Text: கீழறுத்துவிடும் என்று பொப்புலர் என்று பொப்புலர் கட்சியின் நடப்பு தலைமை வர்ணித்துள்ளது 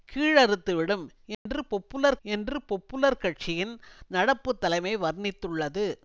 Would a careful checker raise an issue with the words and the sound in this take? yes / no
yes